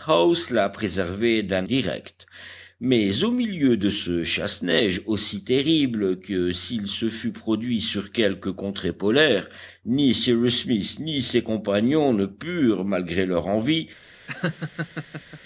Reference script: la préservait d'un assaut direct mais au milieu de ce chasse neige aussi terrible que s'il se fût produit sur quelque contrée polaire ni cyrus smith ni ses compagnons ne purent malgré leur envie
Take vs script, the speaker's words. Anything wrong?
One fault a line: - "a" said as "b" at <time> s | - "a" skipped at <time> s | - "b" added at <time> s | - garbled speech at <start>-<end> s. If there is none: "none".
- "assaut" skipped at 1.7 s